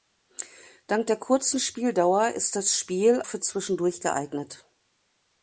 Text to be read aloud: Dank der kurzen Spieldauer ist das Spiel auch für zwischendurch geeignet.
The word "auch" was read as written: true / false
false